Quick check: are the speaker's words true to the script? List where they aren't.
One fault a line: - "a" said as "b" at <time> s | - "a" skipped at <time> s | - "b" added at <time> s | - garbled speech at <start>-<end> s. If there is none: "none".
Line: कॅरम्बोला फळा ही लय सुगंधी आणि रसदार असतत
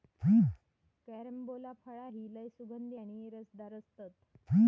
none